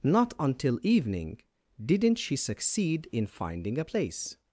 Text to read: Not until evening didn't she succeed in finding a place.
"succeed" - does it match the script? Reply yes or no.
yes